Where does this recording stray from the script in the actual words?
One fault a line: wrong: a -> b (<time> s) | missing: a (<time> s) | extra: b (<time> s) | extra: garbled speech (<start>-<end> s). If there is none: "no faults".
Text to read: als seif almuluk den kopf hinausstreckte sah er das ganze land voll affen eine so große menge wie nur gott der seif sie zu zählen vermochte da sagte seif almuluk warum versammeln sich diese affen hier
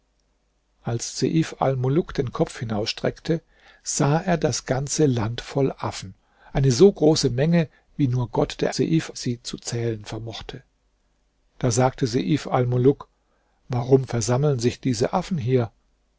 no faults